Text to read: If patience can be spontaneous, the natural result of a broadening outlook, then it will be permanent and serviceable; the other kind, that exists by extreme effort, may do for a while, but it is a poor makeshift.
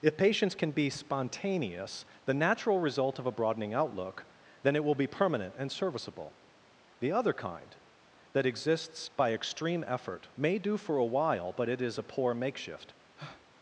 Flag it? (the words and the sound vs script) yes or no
yes